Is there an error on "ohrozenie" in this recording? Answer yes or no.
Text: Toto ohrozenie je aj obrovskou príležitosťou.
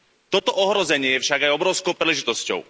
no